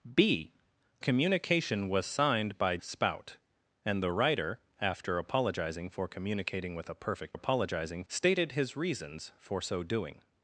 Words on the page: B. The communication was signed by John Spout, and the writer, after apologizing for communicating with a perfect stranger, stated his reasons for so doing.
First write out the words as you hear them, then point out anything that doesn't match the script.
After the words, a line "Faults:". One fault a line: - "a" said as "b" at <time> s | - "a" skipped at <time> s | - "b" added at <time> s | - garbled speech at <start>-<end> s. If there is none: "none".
B. Communication was signed by Spout, and the writer, after apologizing for communicating with a perfect apologizing, stated his reasons for so doing.
Faults:
- "The" skipped at 0.5 s
- "John" skipped at 2.8 s
- "stranger" said as "apologizing" at 7.3 s